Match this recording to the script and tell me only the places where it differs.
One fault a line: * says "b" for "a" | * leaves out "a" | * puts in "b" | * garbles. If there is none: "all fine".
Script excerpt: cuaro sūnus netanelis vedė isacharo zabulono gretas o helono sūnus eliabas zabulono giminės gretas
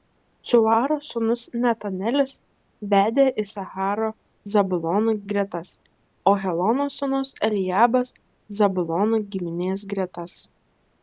all fine